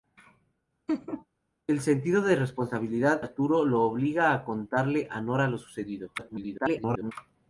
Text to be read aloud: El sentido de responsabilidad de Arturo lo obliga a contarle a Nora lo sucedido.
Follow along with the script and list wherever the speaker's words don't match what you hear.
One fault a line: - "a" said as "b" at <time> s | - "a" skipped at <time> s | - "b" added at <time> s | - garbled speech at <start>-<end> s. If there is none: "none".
- "de" skipped at 3.2 s
- garbled speech at 6.2-7.1 s